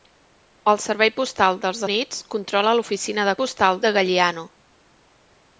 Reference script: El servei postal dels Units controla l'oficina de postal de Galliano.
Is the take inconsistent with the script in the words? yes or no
no